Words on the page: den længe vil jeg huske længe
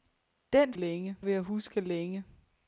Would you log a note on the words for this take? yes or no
no